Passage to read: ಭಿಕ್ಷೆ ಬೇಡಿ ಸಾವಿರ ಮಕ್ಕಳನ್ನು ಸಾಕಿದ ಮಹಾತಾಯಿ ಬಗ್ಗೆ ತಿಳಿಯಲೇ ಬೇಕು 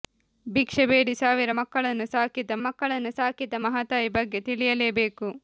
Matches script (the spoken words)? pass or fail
fail